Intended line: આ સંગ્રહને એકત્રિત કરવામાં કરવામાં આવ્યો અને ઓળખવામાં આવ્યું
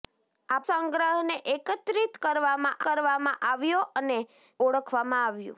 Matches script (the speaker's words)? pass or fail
pass